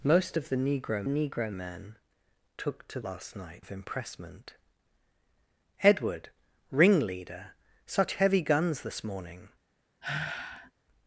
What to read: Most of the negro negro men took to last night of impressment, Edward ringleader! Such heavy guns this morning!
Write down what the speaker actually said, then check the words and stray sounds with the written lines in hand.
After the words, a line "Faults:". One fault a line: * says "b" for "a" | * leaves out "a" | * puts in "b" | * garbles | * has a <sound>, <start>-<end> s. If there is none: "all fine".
Most of the negro negro men took to last night of impressment, Edward ringleader! Such heavy guns this morning!
Faults:
* has a sigh, 10.0-10.7 s